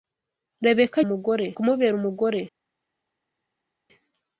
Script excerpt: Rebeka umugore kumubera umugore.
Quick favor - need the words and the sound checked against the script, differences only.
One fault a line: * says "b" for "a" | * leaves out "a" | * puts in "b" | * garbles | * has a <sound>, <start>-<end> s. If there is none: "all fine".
all fine